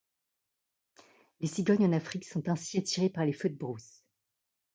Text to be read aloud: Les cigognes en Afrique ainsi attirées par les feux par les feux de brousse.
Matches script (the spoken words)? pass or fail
fail